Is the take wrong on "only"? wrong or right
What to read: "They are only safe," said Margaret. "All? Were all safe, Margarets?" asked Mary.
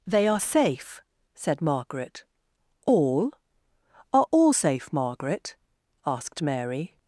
wrong